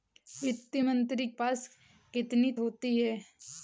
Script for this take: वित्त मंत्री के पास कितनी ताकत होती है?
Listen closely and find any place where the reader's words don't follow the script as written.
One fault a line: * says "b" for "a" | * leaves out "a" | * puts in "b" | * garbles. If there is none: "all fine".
* leaves out "के"
* leaves out "ताकत"